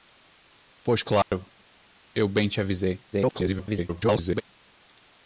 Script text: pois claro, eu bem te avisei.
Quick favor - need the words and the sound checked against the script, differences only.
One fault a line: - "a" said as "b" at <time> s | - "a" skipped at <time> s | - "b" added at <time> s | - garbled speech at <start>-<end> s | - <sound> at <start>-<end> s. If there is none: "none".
- dropout at 1.2-1.3 s
- garbled speech at 3.1-4.4 s